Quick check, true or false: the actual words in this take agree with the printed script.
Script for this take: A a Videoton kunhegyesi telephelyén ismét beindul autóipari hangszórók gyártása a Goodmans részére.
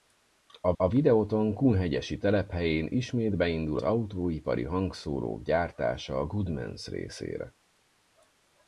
true